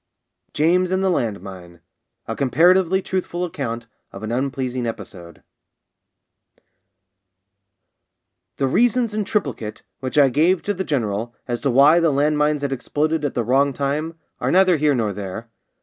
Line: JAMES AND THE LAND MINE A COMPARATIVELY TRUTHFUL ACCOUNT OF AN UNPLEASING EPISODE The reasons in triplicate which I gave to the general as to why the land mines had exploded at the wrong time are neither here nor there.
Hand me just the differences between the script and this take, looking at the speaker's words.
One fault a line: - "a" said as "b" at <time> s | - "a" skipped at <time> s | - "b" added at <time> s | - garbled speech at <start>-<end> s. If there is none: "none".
none